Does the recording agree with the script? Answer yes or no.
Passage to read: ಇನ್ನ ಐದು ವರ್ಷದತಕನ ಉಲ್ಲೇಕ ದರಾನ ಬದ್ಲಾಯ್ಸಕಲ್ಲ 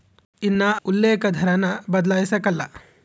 no